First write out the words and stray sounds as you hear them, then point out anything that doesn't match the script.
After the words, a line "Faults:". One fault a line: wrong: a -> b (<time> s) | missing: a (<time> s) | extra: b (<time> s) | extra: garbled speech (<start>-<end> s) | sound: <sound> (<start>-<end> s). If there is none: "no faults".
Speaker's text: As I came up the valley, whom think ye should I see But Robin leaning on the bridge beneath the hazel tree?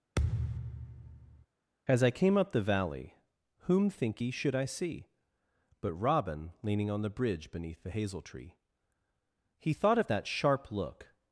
As I came up the valley, whom think ye should I see But Robin leaning on the bridge beneath the hazel tree? He thought of that sharp look
Faults:
sound: thud (0.2-1.5 s)
extra: He thought of that sharp look (9.6 s)